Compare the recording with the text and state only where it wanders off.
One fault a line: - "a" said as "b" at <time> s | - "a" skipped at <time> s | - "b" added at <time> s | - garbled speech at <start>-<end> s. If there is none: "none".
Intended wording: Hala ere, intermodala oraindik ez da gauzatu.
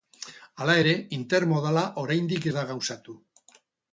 none